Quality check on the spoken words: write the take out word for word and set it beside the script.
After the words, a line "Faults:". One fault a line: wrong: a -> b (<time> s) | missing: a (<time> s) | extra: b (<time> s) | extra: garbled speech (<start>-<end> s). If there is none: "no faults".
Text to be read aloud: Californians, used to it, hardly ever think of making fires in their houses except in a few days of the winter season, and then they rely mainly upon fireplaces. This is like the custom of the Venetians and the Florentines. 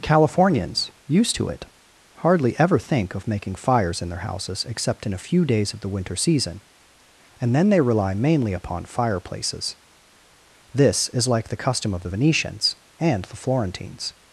Californians, used to it, hardly ever think of making fires in their houses except in a few days of the winter season, and then they rely mainly upon fireplaces. This is like the custom of the Venetians and the Florentines.
Faults:
no faults